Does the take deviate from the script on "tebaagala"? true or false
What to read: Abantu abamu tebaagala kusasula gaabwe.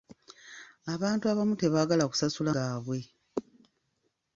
false